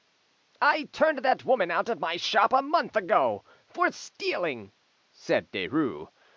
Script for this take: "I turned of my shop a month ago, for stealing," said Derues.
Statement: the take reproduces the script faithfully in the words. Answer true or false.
false